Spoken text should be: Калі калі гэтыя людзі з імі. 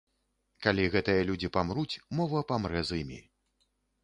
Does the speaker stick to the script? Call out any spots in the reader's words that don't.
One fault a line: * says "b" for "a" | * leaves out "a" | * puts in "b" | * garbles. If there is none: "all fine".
* leaves out "калі"
* puts in "памруць мова памрэ"